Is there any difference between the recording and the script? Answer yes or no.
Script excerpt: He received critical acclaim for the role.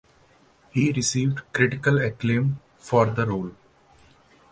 no